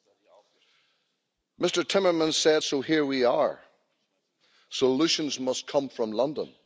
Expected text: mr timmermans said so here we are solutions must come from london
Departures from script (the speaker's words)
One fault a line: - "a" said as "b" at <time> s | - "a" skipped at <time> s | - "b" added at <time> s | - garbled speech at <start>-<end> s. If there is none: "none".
none